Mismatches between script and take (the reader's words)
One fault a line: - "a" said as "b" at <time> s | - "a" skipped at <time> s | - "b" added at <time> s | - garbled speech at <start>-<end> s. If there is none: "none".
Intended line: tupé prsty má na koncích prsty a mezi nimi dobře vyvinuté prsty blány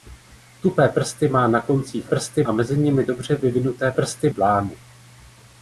none